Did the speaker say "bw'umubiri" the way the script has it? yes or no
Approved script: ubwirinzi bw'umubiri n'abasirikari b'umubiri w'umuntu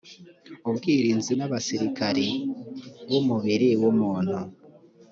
no